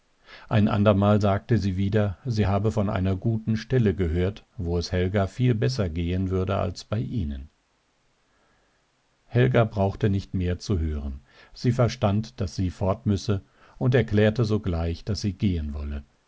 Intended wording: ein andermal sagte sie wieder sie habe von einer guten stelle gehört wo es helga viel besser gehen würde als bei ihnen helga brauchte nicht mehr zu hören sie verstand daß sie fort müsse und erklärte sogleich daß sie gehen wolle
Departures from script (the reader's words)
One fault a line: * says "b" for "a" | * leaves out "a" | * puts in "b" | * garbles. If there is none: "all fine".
all fine